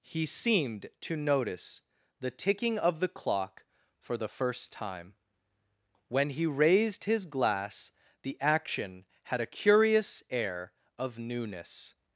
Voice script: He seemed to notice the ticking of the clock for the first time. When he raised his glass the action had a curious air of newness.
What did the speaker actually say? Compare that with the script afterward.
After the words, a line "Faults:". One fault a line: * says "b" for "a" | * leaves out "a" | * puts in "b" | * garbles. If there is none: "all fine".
He seemed to notice the ticking of the clock for the first time. When he raised his glass the action had a curious air of newness.
Faults:
all fine